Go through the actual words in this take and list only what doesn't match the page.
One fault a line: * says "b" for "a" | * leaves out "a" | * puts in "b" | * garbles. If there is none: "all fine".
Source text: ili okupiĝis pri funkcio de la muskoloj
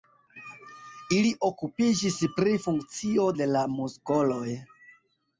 all fine